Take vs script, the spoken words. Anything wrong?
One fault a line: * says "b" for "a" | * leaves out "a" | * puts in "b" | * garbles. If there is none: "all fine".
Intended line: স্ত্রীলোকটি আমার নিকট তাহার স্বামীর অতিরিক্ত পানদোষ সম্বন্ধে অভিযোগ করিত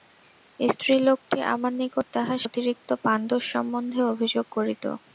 * leaves out "স্বামীর"